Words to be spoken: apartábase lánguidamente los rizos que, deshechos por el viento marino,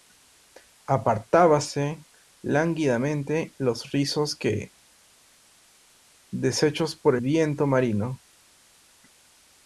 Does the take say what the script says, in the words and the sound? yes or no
no